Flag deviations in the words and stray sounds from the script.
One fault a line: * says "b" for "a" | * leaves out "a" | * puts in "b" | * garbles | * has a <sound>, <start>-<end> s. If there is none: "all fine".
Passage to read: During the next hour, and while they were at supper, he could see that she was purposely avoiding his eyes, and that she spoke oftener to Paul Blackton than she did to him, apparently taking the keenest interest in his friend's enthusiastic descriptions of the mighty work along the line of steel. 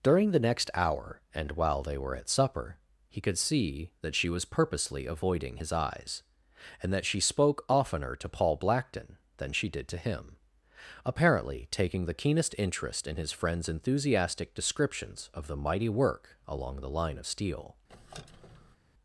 * has a squeak, 17.9-18.8 s